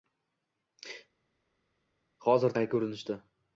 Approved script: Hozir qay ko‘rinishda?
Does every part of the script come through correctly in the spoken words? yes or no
yes